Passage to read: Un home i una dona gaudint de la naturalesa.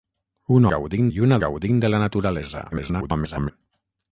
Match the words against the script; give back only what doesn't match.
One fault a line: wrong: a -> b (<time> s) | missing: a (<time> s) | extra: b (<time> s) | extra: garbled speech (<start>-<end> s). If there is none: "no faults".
wrong: home -> gaudint (0.7 s)
missing: dona (1.4 s)
extra: garbled speech (2.7-3.5 s)